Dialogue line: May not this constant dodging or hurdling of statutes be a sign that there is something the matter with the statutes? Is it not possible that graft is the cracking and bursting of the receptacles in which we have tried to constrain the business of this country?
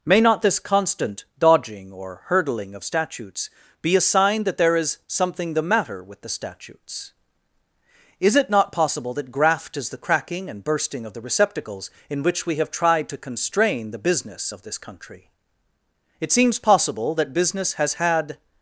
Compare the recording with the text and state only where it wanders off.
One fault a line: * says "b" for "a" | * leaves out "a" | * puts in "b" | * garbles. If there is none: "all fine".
* puts in "It seems possible that business has had"